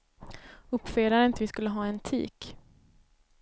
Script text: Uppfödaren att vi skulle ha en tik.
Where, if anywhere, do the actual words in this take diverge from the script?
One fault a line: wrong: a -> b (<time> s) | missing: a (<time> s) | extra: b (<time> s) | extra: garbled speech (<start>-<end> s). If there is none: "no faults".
no faults